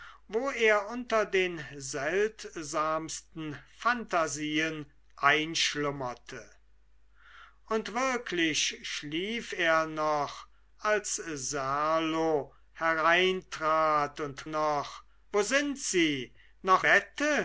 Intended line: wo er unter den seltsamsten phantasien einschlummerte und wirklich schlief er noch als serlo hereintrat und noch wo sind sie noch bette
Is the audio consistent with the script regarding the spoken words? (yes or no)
yes